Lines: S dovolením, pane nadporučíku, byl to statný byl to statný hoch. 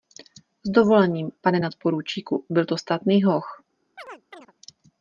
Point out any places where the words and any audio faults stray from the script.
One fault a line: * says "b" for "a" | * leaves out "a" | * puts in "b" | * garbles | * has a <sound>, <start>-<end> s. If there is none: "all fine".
* leaves out "byl to statný"
* has a chirp, 4.0-4.5 s